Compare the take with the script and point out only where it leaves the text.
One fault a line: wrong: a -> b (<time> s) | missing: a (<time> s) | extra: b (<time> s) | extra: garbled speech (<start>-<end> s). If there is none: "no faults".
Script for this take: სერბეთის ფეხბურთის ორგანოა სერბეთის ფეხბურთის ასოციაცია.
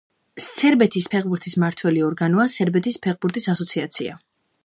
extra: მმართველი (1.6 s)